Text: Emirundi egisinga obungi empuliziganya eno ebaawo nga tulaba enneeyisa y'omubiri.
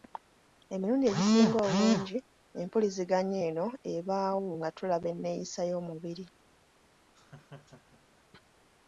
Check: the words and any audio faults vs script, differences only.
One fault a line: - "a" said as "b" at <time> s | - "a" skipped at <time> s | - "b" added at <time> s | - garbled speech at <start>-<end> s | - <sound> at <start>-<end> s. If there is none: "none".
- laugh at 7.1-8.2 s